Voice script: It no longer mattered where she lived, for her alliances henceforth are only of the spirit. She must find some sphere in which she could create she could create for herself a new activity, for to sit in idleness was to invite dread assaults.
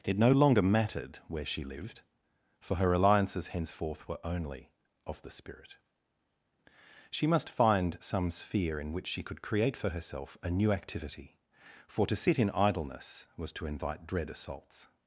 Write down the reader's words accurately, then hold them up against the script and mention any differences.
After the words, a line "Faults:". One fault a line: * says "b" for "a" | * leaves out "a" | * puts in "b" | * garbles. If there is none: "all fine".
It no longer mattered where she lived, for her alliances henceforth were only of the spirit. She must find some sphere in which she could create for herself a new activity, for to sit in idleness was to invite dread assaults.
Faults:
* says "were" for "are"
* leaves out "she could create"